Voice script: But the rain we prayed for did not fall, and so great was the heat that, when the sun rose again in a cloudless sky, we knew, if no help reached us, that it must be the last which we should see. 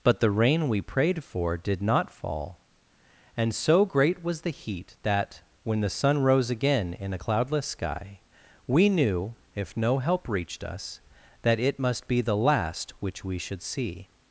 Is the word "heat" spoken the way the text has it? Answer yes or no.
yes